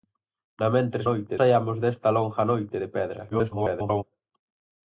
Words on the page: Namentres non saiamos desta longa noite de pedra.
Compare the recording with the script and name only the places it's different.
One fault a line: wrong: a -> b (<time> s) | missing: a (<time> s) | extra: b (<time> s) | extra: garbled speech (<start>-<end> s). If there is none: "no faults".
wrong: non -> noite (1.1 s)
extra: garbled speech (3.3-4.0 s)